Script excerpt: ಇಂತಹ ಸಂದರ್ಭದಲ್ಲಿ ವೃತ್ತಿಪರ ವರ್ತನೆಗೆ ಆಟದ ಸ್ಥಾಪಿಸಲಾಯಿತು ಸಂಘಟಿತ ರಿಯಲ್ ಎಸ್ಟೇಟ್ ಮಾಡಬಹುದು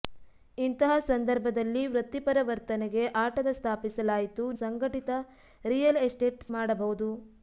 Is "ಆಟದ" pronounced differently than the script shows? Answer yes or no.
no